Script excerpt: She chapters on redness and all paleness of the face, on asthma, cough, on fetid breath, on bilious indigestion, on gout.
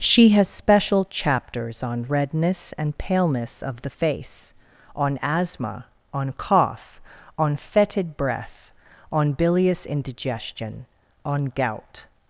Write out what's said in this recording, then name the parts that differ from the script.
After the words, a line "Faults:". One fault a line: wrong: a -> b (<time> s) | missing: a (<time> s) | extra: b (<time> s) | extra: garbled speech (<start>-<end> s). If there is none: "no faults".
She has special chapters on redness and paleness of the face, on asthma, on cough, on fetid breath, on bilious indigestion, on gout.
Faults:
extra: has special (0.3 s)
missing: all (3.0 s)
extra: on (6.1 s)